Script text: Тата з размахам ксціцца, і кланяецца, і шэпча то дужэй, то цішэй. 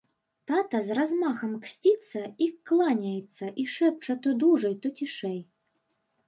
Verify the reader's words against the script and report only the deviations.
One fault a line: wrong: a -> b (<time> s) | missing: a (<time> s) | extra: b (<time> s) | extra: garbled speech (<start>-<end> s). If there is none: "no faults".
no faults